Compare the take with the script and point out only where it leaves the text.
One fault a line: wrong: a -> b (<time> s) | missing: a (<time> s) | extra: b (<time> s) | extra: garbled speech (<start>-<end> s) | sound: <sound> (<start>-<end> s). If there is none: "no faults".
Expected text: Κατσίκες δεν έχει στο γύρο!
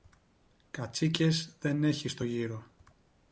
no faults